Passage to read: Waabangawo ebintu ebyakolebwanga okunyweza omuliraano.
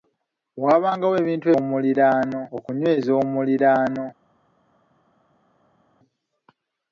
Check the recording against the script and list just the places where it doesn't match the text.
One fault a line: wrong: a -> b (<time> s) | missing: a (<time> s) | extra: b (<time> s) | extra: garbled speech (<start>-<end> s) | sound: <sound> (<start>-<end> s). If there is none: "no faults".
wrong: ebyakolebwanga -> omuliraano (1.6 s)